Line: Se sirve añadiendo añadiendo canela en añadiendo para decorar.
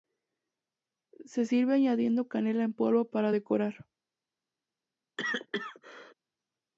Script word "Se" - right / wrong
right